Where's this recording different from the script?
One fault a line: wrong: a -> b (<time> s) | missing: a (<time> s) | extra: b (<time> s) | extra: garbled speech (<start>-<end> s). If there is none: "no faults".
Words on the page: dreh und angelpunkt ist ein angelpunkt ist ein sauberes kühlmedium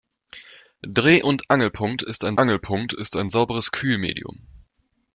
no faults